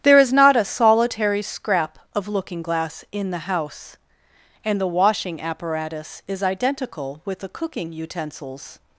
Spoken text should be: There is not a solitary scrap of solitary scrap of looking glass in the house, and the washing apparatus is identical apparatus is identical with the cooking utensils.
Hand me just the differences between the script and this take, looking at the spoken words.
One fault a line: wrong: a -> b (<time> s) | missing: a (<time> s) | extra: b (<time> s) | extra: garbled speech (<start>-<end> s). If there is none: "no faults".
missing: solitary scrap of (2.3 s)
missing: apparatus is identical (7.2 s)